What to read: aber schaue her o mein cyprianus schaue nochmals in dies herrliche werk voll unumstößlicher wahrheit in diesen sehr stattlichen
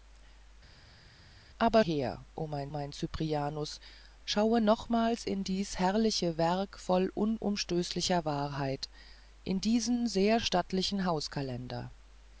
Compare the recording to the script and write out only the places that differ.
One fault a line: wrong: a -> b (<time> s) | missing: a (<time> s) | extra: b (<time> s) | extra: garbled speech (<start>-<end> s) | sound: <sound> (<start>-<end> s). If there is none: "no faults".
missing: schaue (1.8 s)
extra: mein (2.7 s)